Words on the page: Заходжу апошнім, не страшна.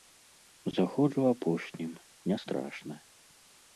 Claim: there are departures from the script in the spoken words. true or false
false